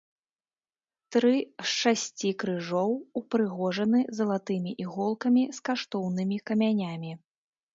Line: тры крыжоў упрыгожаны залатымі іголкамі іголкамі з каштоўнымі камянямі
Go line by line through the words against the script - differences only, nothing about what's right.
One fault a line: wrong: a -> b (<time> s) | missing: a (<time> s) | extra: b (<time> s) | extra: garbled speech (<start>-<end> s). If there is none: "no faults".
extra: з шасці (1.4 s)
missing: іголкамі (5.4 s)